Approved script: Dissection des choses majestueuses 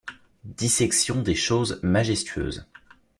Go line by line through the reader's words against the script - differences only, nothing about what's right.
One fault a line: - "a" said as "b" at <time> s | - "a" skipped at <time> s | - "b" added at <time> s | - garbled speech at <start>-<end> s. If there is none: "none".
none